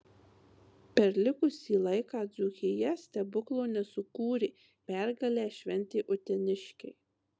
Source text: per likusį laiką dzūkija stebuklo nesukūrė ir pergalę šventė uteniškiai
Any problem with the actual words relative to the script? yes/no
yes